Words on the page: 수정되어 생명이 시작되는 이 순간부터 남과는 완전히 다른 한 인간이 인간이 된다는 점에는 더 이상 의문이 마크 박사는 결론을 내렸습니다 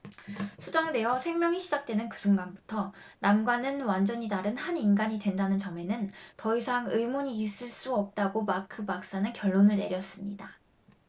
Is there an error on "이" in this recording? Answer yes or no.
yes